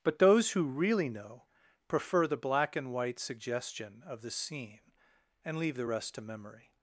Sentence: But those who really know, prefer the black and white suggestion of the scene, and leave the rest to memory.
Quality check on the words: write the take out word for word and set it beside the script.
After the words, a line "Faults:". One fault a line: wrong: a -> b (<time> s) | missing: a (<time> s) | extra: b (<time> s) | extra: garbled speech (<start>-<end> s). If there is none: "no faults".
But those who really know, prefer the black and white suggestion of the scene, and leave the rest to memory.
Faults:
no faults